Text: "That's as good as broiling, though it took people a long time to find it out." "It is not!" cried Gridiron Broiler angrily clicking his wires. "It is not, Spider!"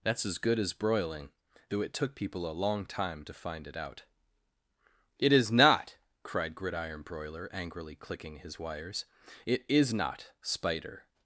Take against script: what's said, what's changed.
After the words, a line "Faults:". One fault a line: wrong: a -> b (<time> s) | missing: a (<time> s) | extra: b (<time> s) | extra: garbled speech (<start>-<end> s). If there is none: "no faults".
"That's as good as broiling, though it took people a long time to find it out." "It is not!" cried Gridiron Broiler angrily clicking his wires. "It is not, Spider!"
Faults:
no faults